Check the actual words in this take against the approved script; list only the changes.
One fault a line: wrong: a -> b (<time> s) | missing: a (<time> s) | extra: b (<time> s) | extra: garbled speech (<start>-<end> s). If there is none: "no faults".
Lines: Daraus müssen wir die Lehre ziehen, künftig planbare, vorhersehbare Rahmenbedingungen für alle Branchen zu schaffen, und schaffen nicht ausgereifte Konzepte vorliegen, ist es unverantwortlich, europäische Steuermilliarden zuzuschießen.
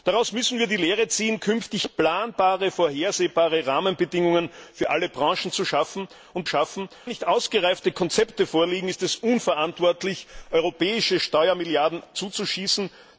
no faults